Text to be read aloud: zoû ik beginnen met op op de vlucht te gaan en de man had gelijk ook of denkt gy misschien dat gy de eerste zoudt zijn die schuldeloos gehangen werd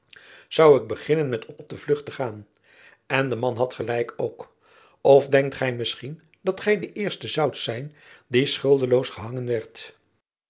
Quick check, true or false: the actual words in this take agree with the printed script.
true